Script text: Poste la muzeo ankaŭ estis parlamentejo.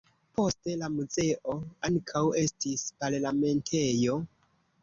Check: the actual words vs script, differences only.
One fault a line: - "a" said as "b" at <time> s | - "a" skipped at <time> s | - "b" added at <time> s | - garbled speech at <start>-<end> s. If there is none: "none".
none